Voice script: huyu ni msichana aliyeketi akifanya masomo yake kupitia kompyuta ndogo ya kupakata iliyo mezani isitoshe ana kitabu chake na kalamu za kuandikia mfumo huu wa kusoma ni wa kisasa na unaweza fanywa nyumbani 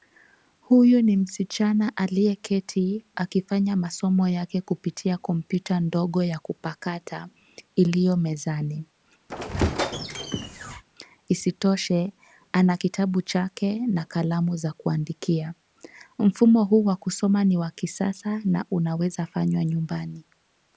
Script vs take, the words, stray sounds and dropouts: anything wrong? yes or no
yes